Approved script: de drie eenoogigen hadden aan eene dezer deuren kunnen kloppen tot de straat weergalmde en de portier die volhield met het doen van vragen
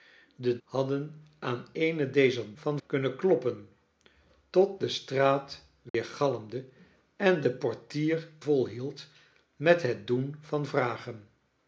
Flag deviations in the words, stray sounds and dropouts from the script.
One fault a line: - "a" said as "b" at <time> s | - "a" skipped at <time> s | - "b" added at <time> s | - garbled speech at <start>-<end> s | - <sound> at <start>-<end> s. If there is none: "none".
- "drie eenoogigen" skipped at 0.6 s
- "deuren" said as "van" at 2.5 s
- dropout at 5.9-5.9 s
- "die" skipped at 8.3 s